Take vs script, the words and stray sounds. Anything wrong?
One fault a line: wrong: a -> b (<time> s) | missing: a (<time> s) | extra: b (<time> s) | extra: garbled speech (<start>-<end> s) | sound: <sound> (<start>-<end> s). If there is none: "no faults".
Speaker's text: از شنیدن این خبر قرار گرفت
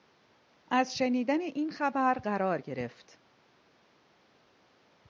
no faults